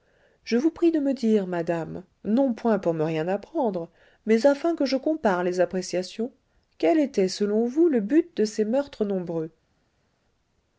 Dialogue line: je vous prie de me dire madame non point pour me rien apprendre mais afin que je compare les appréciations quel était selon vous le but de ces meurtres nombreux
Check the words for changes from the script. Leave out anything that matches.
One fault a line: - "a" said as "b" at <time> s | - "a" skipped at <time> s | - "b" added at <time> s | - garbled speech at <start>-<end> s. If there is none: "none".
none